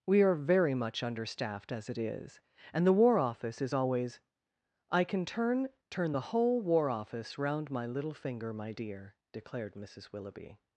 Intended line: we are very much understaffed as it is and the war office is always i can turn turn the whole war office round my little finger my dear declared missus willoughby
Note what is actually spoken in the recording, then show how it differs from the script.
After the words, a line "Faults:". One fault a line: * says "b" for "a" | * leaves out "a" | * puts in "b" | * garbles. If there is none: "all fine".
we are very much understaffed as it is and the war office is always i can turn turn the whole war office round my little finger my dear declared missus willoughby
Faults:
all fine